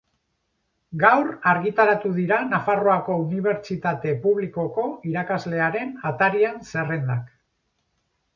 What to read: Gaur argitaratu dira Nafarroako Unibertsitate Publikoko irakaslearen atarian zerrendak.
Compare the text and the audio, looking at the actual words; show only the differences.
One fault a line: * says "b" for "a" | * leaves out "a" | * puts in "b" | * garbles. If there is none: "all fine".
all fine